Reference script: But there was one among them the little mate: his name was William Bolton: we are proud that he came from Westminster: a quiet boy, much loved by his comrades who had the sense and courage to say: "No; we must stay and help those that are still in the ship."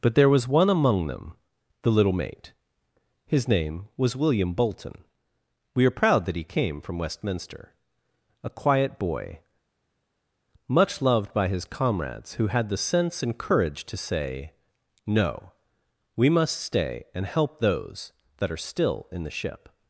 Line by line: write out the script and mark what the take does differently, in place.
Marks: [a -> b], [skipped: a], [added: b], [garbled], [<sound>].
But there was one among them the little mate: his name was William Bolton: we are proud that he came from Westminster: a quiet boy, much loved by his comrades who had the sense and courage to say: "No; we must stay and help those that are still in the ship."